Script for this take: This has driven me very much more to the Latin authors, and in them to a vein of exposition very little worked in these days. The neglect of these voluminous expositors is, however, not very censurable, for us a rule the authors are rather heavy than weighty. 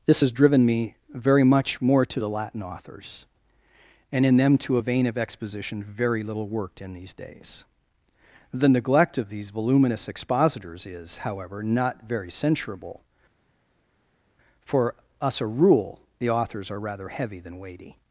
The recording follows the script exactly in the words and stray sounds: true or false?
true